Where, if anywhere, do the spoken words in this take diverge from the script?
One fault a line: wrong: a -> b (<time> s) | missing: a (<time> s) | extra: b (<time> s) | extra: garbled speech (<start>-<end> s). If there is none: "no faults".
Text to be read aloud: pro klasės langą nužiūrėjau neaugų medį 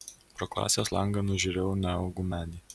no faults